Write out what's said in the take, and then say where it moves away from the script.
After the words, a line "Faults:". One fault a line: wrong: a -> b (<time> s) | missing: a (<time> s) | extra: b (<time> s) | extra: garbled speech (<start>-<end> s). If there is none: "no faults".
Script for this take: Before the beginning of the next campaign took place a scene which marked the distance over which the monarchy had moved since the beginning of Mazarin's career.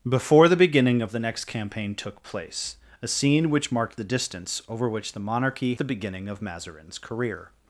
Before the beginning of the next campaign took place a scene which marked the distance over which the monarchy the beginning of Mazarin's career.
Faults:
missing: had moved since (5.8 s)